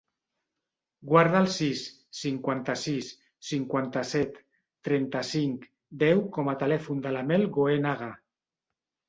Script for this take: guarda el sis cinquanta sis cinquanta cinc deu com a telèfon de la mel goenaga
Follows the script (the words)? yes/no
no